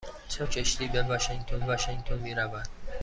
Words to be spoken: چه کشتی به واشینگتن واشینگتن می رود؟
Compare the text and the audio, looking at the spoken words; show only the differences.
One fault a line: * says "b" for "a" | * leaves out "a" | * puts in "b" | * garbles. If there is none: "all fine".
all fine